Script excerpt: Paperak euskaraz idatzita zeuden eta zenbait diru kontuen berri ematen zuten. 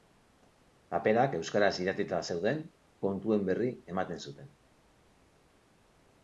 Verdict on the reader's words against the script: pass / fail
fail